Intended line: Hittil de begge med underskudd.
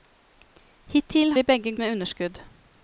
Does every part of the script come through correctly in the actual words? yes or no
yes